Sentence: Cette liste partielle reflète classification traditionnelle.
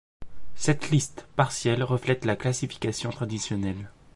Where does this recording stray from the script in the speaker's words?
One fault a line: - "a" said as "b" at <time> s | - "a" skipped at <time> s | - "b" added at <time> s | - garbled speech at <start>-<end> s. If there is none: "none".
- "la" added at 2.2 s